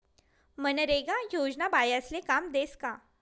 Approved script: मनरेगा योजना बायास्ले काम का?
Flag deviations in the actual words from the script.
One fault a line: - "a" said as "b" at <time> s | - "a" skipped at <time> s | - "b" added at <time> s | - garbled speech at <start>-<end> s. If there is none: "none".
- "देस" added at 2.5 s